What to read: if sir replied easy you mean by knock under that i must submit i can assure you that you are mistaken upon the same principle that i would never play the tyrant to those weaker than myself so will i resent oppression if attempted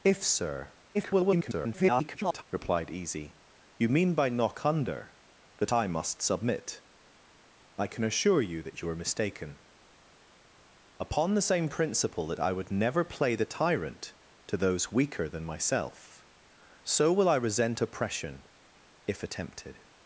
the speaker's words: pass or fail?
fail